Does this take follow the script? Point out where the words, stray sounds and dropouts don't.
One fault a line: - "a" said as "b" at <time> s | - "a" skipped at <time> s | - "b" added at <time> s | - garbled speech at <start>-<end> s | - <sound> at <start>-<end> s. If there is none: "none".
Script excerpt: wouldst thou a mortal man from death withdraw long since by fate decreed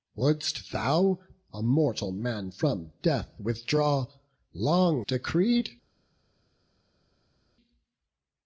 - "since by fate" skipped at 5.0 s